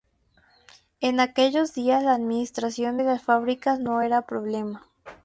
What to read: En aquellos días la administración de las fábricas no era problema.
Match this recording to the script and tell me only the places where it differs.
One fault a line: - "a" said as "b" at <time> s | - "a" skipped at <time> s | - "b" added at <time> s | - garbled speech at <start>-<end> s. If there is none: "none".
none